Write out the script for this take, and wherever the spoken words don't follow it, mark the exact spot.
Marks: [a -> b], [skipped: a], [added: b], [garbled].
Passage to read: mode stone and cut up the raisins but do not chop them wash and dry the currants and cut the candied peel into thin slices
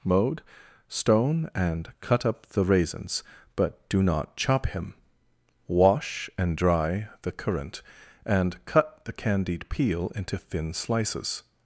mode stone and cut up the raisins but do not chop [them -> him] wash and dry the [currants -> currant] and cut the candied peel into thin slices